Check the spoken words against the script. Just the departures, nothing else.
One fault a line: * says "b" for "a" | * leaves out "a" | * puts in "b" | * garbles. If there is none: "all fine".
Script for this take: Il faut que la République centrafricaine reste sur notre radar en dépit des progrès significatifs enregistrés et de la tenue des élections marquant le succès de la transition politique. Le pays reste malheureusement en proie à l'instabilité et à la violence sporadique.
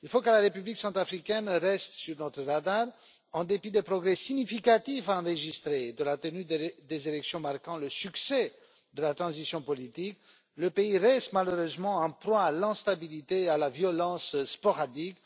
all fine